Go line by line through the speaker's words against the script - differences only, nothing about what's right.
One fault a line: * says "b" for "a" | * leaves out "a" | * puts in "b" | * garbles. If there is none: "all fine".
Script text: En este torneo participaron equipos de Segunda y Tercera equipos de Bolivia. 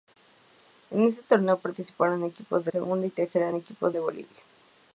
all fine